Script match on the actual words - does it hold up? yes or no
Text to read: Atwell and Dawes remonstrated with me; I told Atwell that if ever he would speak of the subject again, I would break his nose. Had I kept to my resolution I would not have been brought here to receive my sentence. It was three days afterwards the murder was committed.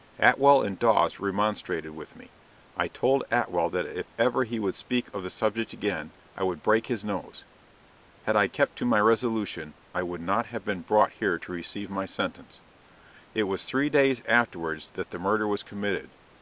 no